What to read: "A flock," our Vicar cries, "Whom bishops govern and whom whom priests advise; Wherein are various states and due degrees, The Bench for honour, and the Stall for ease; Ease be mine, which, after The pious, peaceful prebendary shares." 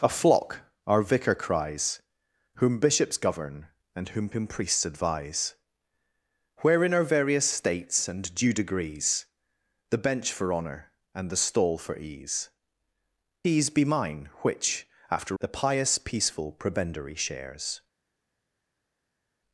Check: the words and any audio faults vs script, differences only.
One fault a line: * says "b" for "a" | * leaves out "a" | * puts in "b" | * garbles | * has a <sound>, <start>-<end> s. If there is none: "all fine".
all fine